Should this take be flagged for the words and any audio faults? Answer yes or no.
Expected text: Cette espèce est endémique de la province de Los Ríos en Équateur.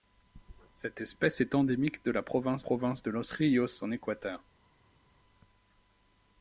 yes